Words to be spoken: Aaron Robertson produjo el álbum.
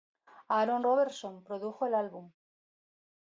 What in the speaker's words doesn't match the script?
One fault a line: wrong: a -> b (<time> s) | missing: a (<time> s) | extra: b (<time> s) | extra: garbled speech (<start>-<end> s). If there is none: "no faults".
no faults